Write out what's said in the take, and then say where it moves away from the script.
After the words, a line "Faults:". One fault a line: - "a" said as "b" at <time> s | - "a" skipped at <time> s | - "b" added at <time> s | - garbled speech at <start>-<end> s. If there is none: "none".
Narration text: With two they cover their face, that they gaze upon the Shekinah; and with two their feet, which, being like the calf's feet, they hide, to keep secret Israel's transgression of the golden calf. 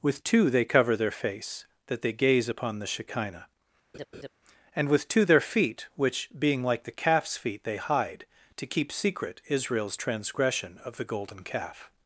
With two they cover their face, that they gaze upon the Shekinah; and with two their feet, which, being like the calf's feet, they hide, to keep secret Israel's transgression of the golden calf.
Faults:
none